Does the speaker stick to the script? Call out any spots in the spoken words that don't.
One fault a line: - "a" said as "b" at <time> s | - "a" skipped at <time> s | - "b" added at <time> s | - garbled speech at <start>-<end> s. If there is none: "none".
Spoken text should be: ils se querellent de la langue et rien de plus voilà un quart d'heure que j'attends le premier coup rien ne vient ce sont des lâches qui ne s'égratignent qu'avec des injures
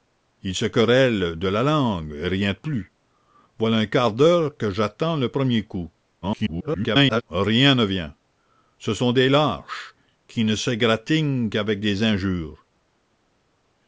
- garbled speech at 6.2-7.2 s